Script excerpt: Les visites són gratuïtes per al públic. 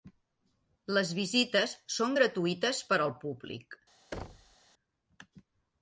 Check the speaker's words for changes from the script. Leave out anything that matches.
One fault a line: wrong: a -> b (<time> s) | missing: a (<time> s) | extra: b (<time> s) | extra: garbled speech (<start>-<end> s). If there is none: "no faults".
no faults